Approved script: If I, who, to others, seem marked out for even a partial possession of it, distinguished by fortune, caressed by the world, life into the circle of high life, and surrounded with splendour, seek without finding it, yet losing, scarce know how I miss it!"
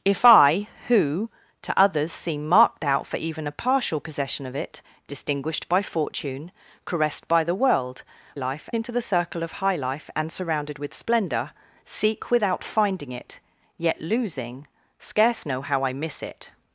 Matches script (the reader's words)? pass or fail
pass